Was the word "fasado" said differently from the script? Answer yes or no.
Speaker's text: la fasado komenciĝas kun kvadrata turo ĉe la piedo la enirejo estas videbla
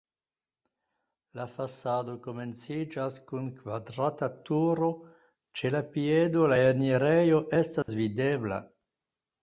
no